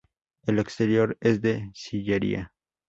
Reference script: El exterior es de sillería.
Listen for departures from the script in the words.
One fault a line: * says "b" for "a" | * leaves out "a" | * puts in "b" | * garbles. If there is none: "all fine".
all fine